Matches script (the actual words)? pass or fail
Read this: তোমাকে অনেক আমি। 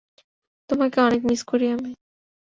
fail